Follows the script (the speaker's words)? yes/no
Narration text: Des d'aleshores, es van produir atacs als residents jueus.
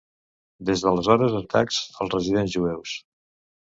no